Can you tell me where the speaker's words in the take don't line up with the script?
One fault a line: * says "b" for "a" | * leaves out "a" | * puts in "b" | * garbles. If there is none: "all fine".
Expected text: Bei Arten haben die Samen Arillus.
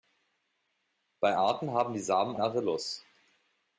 all fine